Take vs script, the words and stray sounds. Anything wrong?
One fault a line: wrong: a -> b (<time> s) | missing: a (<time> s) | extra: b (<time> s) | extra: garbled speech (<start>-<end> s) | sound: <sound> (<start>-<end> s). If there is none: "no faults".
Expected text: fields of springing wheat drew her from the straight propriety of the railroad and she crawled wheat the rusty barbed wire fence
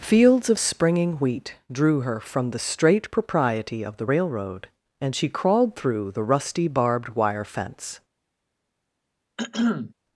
wrong: wheat -> through (5.7 s)
sound: throat clearing (9.4-9.9 s)